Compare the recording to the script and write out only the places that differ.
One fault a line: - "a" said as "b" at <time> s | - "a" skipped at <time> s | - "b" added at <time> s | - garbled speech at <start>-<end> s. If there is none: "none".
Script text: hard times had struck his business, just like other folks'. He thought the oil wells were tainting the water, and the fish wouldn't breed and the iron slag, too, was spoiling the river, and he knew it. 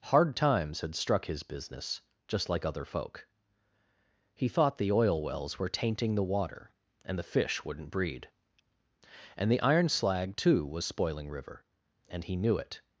- "folks" said as "folk" at 2.9 s
- "the" skipped at 11.3 s